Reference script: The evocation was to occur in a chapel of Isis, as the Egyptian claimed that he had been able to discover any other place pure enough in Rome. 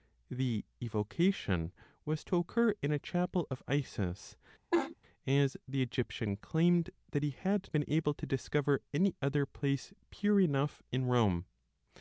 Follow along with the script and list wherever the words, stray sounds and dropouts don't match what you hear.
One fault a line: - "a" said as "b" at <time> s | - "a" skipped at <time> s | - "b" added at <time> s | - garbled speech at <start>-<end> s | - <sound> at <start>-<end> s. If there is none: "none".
- laugh at 4.7-5.0 s